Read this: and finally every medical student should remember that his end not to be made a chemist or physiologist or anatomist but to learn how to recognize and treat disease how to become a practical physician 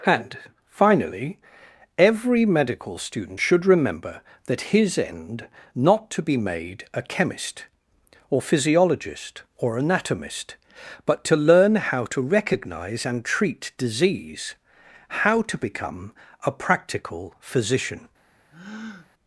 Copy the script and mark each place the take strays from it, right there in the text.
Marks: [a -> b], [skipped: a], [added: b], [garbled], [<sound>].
and finally every medical student should remember that his end not to be made a chemist or physiologist or anatomist but to learn how to recognize and treat disease how to become a practical physician [breath]